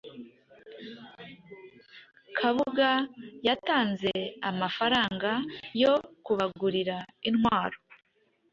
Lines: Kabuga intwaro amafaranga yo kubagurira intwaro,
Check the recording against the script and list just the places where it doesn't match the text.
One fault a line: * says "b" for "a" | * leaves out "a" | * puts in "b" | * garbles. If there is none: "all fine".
* says "yatanze" for "intwaro"